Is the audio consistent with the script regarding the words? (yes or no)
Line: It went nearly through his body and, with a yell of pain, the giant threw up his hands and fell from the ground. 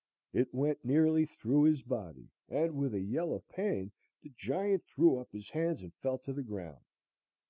no